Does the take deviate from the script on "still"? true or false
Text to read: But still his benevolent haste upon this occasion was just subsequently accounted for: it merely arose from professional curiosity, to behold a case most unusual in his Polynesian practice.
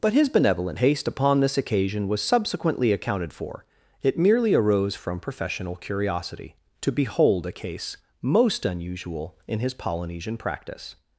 true